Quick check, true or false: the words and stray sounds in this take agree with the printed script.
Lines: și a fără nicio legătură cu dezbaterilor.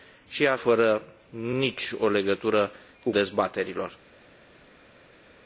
true